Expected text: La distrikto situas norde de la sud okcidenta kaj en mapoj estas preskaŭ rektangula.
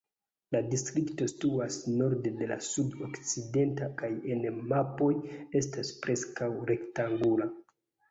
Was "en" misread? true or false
false